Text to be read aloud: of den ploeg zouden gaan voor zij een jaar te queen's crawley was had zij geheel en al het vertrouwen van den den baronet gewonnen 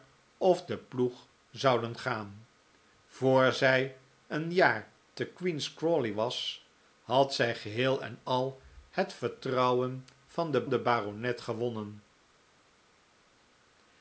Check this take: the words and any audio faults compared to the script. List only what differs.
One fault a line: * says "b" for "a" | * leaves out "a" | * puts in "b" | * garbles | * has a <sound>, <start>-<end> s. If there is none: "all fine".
all fine